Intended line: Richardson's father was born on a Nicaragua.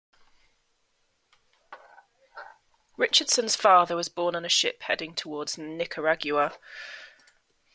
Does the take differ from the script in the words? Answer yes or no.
yes